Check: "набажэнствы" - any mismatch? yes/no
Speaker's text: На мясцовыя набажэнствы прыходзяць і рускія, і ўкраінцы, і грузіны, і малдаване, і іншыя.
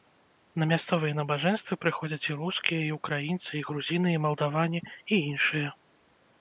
no